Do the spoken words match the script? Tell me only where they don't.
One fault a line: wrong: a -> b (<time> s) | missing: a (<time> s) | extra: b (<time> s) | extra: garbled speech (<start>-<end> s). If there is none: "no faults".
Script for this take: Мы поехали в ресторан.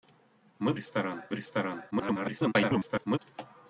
wrong: поехали -> ресторан (0.7 s)
extra: garbled speech (1.9-3.2 s)